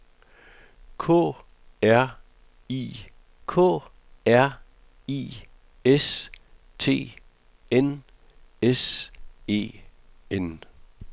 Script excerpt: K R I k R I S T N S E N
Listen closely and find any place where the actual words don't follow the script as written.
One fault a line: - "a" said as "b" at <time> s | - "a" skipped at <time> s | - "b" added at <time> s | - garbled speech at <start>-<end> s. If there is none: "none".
none